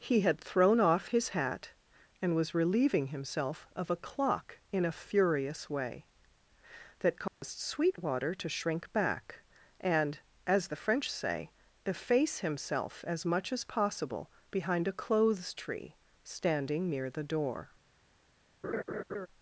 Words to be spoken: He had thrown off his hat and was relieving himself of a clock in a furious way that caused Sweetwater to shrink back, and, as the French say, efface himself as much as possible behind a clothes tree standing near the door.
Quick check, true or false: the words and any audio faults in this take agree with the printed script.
false